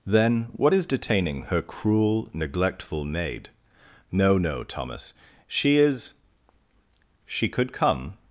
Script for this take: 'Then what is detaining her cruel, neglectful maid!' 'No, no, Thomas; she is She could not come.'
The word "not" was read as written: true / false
false